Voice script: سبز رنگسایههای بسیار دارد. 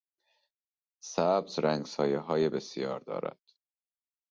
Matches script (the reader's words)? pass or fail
pass